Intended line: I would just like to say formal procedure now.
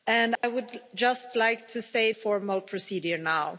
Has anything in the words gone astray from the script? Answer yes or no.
no